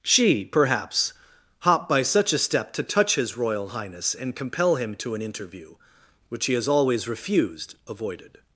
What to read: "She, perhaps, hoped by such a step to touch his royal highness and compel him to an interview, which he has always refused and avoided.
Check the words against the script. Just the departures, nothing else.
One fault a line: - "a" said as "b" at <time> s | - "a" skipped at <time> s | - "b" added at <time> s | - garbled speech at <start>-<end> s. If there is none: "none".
- "hoped" said as "hop" at 1.6 s
- "and" skipped at 7.8 s